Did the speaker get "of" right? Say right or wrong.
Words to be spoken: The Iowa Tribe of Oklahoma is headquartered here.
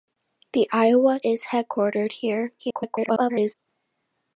wrong